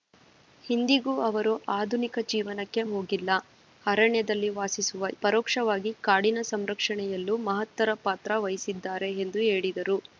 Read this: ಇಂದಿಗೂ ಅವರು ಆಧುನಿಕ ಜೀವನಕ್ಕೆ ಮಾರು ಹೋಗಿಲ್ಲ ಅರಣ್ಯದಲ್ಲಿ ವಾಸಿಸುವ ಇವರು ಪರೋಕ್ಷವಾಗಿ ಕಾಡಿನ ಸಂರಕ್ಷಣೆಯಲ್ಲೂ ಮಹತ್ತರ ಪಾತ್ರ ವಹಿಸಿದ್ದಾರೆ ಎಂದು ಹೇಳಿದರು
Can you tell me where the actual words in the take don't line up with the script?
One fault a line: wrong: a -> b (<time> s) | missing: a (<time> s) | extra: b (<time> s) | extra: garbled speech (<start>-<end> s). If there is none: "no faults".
missing: ಮಾರು (2.8 s)
missing: ಇವರು (5.1 s)